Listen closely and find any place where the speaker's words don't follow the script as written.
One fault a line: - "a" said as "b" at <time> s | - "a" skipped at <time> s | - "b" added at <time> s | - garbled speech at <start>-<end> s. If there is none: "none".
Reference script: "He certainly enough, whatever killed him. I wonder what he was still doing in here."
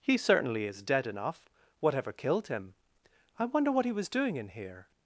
- "is dead" added at 0.7 s
- "still" skipped at 4.1 s